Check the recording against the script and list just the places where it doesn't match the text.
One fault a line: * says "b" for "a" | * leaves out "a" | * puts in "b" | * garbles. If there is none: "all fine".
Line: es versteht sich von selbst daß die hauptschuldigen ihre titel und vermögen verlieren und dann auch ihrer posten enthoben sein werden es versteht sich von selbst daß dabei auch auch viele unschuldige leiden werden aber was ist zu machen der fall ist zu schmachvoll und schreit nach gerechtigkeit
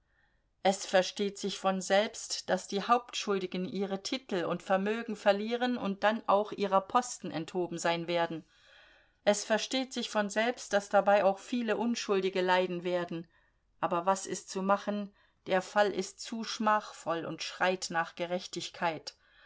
* leaves out "auch"